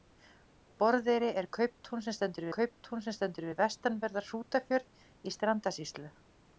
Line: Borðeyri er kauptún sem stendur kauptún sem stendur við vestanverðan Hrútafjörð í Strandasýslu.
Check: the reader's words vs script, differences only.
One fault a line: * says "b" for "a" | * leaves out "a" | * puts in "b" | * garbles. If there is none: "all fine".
all fine